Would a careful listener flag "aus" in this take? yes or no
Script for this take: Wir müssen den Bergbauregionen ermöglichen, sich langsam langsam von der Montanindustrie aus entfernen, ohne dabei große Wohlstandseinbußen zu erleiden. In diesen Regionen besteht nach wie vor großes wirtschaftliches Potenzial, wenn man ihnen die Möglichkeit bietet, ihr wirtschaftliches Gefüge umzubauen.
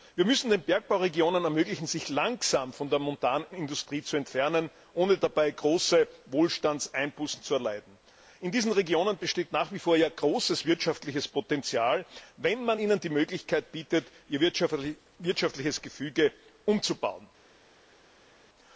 yes